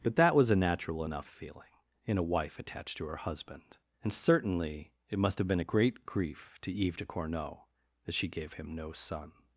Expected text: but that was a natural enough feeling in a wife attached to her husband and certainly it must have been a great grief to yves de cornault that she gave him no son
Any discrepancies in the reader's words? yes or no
no